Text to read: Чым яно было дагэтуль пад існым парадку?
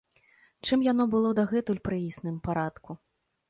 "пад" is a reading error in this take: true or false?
true